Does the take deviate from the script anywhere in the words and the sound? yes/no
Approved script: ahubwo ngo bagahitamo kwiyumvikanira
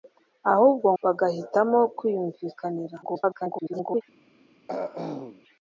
yes